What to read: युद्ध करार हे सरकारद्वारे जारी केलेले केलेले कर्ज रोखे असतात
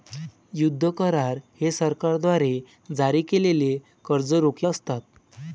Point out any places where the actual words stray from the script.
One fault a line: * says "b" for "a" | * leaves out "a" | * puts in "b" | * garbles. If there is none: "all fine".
* leaves out "केलेले"